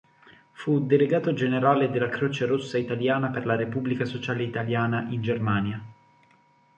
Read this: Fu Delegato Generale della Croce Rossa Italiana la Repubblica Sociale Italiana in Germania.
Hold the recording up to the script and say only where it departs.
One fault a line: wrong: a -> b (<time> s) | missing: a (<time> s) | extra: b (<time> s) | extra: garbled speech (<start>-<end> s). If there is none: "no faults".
extra: per (3.3 s)